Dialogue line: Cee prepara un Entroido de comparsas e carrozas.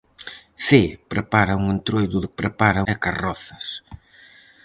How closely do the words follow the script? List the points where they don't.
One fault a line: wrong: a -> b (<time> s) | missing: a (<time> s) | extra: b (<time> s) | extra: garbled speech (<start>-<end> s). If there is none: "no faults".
wrong: comparsas -> prepara (2.4 s)